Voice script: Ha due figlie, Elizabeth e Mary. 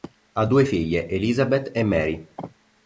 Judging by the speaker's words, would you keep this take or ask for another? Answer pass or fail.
pass